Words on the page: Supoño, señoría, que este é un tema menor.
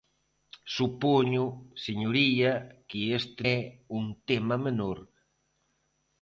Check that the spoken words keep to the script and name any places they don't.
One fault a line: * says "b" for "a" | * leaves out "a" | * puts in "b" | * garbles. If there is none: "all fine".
all fine